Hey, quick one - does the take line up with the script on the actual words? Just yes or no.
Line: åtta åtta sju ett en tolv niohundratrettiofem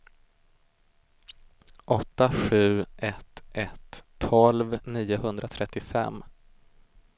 no